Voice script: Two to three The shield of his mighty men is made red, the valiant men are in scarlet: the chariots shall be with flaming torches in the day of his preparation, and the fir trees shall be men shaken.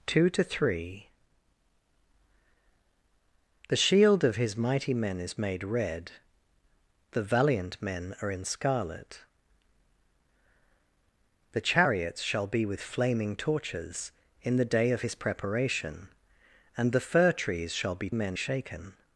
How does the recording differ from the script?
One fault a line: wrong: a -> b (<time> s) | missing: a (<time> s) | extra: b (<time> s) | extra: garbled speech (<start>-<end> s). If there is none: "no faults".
no faults